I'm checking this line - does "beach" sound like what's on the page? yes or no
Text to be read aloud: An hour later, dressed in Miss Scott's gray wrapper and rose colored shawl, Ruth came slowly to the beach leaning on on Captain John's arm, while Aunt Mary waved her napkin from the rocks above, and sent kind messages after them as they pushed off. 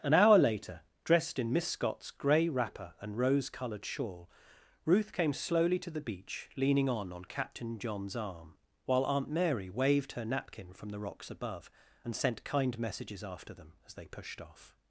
yes